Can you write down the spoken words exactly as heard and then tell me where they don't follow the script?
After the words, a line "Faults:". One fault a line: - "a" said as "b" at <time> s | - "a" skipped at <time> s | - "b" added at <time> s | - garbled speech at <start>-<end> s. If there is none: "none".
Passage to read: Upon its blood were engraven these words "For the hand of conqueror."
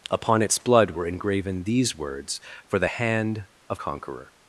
Upon its blood were engraven these words "For the hand of conqueror."
Faults:
none